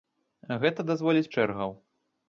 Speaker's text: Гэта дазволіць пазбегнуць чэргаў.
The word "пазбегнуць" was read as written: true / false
false